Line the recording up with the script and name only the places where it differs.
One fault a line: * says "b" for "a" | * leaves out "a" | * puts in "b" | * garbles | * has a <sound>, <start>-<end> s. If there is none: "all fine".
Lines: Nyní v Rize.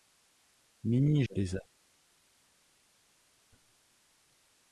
all fine